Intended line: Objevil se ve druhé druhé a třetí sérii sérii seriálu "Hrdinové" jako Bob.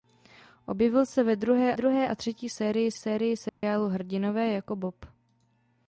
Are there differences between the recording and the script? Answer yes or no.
no